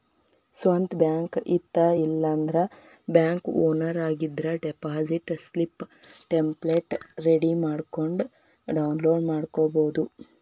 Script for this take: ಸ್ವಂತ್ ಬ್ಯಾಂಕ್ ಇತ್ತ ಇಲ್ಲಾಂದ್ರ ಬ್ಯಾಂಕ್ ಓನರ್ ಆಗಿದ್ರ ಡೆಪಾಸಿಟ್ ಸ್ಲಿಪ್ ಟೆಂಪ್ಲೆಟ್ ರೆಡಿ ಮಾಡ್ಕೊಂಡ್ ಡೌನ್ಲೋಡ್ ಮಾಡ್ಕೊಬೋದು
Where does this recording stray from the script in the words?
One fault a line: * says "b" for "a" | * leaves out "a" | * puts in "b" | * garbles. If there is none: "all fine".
all fine